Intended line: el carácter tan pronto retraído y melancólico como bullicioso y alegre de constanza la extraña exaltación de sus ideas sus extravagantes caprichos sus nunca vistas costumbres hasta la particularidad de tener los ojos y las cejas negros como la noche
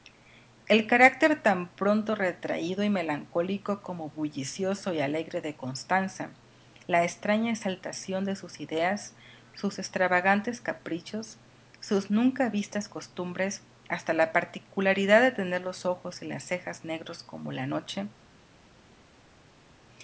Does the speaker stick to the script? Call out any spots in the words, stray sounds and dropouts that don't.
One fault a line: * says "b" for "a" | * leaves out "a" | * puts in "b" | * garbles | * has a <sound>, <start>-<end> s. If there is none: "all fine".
all fine